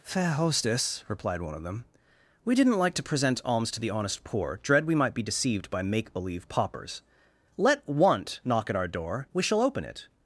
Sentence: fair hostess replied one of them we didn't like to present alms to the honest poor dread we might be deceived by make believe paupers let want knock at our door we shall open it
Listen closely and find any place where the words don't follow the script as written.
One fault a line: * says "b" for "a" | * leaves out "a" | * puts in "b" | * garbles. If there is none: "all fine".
all fine